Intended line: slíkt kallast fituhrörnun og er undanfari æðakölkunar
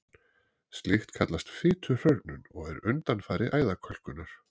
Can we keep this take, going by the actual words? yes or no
yes